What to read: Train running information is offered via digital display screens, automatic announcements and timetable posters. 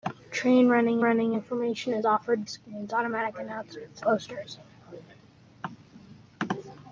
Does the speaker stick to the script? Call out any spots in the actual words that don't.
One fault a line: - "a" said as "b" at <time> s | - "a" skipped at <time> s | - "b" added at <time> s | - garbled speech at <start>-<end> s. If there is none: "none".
- "running" added at 1.0 s
- "via digital display" skipped at 2.5 s
- "and timetable" skipped at 4.0 s